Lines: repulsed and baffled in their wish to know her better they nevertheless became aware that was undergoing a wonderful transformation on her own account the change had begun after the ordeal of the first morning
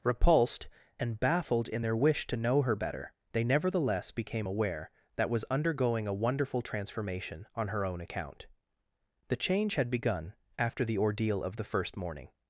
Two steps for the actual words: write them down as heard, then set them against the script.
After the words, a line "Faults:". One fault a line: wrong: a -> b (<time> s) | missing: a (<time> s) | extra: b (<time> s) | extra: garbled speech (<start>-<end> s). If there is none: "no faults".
repulsed and baffled in their wish to know her better they nevertheless became aware that was undergoing a wonderful transformation on her own account the change had begun after the ordeal of the first morning
Faults:
no faults